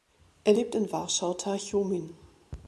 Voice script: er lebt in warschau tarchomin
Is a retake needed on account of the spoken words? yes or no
no